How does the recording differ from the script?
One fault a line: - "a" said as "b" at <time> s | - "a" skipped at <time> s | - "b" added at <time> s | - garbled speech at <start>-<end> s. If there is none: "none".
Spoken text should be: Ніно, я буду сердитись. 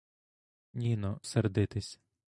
- "я буду" skipped at 1.2 s